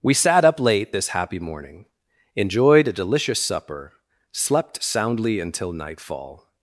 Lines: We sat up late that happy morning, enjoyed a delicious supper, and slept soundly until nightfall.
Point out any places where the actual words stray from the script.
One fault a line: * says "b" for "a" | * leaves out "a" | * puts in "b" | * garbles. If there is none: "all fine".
* says "this" for "that"
* leaves out "and"